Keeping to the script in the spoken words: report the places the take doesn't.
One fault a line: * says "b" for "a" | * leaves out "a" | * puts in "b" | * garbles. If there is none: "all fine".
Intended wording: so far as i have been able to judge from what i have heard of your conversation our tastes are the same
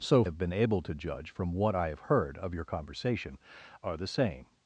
* leaves out "far as i"
* leaves out "our tastes"